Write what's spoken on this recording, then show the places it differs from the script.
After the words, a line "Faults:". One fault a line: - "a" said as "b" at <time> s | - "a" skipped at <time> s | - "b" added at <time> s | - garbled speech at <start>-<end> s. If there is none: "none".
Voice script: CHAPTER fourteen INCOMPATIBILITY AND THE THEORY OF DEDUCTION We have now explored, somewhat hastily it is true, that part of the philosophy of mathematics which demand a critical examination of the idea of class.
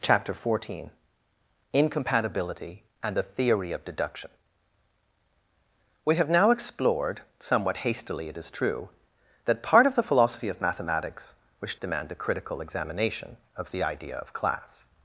CHAPTER fourteen INCOMPATIBILITY AND THE THEORY OF DEDUCTION We have now explored, somewhat hastily it is true, that part of the philosophy of mathematics which demand a critical examination of the idea of class.
Faults:
none